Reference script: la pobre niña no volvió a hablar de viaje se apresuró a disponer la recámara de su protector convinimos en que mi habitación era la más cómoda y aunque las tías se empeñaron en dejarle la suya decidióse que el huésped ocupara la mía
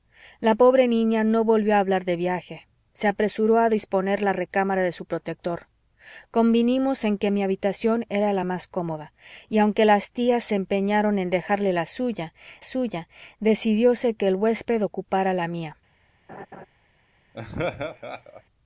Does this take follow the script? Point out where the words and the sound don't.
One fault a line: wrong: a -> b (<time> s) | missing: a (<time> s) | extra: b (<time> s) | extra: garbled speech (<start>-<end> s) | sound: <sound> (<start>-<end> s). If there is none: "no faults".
extra: suya (12.6 s)
sound: laugh (16.3-16.7 s)
sound: laugh (17.3-18.4 s)